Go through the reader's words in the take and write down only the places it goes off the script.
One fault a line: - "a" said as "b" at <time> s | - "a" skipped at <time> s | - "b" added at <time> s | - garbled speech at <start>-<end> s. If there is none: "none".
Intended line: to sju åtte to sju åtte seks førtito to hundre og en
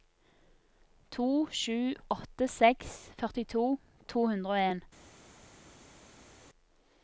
- "to sju åtte" skipped at 2.5 s